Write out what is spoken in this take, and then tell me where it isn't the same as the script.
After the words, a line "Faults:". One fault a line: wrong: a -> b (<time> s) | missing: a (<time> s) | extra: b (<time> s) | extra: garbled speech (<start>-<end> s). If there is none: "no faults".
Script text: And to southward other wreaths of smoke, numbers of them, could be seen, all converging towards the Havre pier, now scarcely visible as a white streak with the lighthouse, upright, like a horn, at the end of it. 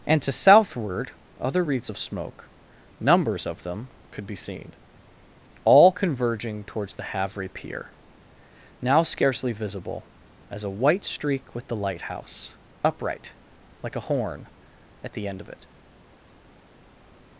And to southward other wreaths of smoke, numbers of them, could be seen, all converging towards the Havre pier, now scarcely visible as a white streak with the lighthouse, upright, like a horn, at the end of it.
Faults:
no faults